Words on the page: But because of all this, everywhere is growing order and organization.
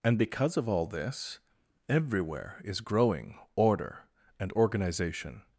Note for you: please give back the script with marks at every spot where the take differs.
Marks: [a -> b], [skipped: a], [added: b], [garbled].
[But -> And] because of all this, everywhere is growing order and organization.